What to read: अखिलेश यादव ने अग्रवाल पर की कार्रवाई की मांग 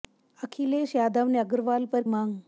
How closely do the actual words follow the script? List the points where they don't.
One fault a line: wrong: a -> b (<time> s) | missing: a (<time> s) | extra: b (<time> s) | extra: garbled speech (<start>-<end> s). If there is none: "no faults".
missing: की कार्रवाई की (2.0 s)